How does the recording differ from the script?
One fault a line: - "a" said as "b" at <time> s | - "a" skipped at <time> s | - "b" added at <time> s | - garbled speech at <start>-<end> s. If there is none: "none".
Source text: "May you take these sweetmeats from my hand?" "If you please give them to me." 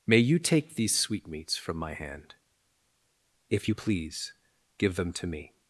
none